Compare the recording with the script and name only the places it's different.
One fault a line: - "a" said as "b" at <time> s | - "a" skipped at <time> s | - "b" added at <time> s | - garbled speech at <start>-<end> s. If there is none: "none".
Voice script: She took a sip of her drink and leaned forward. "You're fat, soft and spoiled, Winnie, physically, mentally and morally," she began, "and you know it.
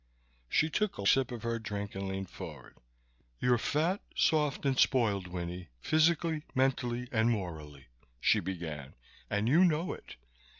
none